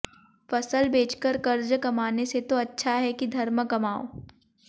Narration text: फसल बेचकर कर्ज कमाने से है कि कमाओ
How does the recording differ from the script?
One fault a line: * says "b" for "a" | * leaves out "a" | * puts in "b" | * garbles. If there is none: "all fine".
* puts in "तो अच्छा"
* puts in "धर्म"